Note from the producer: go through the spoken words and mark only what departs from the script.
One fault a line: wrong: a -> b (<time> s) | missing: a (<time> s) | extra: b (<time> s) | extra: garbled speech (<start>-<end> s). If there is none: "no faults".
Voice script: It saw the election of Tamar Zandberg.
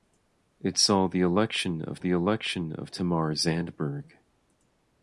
extra: the election of (2.0 s)